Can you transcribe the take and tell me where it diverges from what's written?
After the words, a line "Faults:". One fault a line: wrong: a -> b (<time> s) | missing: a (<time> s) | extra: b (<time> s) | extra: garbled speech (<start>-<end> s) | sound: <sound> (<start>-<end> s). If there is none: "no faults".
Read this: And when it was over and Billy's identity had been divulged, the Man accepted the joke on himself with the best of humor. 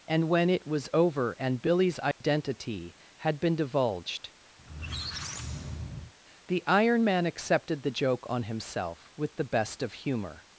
And when it was over and Billy's identity had been divulged, the Iron Man accepted the joke on himself with the best of humor.
Faults:
sound: dropout (2.1-2.2 s)
sound: squeak (4.6-6.1 s)
extra: Iron (6.7 s)